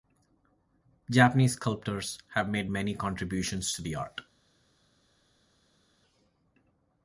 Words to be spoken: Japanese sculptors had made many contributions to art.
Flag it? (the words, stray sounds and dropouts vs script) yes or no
yes